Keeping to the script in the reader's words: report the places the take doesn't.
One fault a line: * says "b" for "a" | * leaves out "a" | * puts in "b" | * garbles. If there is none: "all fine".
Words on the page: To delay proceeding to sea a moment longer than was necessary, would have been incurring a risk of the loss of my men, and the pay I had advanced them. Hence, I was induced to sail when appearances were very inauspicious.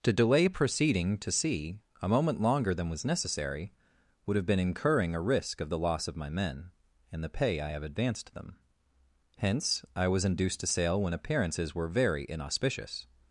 * says "have" for "had"